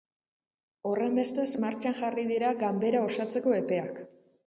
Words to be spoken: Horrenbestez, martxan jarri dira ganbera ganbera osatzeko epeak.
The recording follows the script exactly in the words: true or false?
false